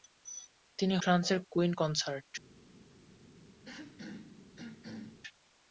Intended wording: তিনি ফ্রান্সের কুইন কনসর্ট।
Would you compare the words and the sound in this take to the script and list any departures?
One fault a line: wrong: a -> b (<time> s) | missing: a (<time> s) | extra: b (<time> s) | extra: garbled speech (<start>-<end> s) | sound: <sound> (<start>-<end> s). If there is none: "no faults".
sound: throat clearing (3.6-5.2 s)